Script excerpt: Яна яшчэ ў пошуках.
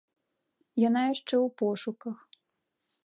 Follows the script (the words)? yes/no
yes